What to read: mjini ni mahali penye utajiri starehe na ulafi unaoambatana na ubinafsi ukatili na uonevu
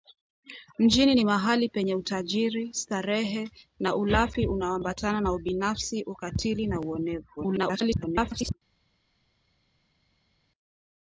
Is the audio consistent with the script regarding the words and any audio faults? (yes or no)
no